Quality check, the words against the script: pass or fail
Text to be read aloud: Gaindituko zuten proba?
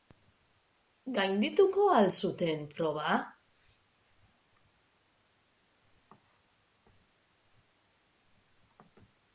fail